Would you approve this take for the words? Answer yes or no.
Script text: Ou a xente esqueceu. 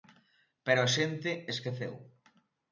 no